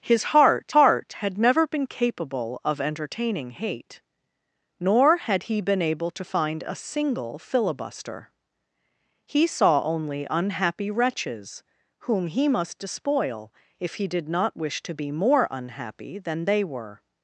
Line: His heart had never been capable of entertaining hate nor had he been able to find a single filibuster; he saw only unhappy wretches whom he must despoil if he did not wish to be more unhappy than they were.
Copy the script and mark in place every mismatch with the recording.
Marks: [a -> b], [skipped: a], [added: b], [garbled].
His heart [added: heart] had never been capable of entertaining hate nor had he been able to find a single filibuster; he saw only unhappy wretches whom he must despoil if he did not wish to be more unhappy than they were.